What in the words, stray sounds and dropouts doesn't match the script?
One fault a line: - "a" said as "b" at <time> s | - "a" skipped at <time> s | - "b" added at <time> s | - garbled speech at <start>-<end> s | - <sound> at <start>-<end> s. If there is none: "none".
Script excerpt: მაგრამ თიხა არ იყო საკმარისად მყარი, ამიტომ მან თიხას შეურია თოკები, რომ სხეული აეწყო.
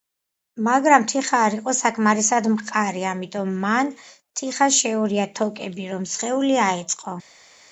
none